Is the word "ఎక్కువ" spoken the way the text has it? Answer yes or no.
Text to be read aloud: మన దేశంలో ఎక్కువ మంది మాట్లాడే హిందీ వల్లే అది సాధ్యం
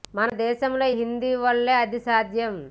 no